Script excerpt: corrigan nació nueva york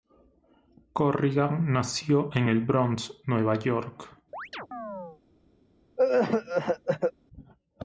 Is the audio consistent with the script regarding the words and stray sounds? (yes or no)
no